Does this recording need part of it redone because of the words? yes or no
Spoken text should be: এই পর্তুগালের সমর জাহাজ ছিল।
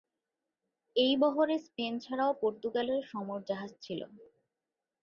yes